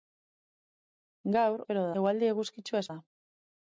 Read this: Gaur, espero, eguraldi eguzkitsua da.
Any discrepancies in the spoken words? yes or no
no